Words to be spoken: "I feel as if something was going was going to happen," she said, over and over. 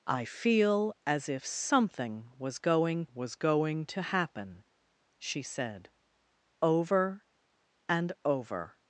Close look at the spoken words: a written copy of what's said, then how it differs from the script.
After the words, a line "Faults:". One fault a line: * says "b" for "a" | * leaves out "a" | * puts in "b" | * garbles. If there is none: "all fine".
"I feel as if something was going was going to happen," she said, over and over.
Faults:
all fine